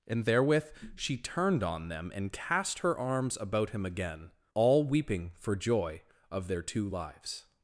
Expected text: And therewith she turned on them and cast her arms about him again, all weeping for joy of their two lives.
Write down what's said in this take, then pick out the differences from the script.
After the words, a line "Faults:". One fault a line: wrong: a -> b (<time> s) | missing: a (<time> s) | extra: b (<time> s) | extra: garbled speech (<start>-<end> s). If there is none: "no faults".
And therewith she turned on them and cast her arms about him again, all weeping for joy of their two lives.
Faults:
no faults